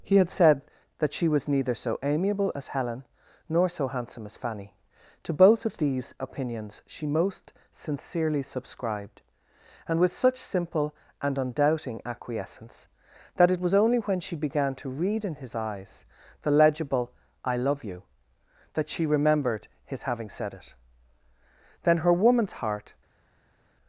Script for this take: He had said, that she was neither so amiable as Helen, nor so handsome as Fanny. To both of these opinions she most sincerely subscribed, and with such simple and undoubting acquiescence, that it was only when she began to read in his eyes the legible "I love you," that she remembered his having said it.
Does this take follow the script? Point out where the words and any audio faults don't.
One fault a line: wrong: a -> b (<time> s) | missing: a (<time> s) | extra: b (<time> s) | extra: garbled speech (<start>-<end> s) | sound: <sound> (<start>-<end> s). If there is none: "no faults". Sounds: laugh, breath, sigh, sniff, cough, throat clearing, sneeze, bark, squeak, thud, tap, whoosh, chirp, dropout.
extra: Then her woman's heart (21.8 s)